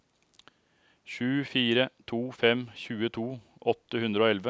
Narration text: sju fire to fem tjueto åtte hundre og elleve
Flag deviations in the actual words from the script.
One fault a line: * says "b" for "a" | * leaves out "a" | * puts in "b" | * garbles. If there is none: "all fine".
all fine